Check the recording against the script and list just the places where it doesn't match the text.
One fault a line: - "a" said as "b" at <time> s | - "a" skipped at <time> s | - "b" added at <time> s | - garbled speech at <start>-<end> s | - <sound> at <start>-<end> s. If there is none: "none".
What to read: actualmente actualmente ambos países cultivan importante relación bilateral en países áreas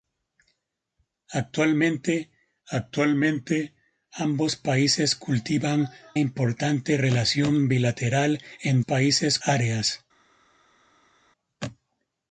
none